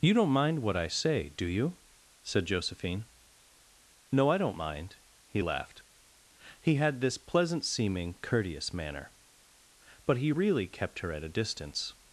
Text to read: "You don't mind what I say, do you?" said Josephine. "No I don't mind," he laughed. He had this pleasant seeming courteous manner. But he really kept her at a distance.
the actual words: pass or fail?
pass